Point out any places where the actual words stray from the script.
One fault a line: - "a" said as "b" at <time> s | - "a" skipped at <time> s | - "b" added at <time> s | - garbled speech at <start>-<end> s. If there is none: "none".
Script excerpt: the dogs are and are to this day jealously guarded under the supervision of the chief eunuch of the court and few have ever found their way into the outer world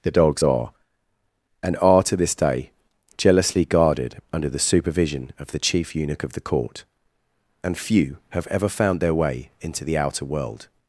none